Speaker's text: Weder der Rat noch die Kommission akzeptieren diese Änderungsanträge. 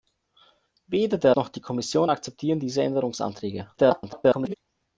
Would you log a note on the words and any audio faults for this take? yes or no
yes